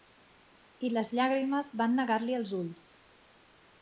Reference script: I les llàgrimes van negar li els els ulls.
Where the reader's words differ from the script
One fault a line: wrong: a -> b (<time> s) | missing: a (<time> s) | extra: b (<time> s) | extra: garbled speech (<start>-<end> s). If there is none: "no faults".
missing: els (2.5 s)